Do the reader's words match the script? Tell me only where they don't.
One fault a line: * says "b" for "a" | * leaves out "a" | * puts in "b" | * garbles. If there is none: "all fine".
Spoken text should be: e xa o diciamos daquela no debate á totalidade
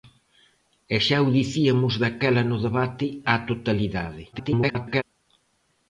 * garbles